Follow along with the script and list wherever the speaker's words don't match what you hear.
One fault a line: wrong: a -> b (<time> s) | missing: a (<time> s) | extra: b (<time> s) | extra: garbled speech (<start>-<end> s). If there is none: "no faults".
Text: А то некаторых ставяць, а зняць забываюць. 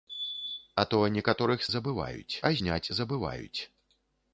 wrong: ставяць -> забываюць (1.7 s)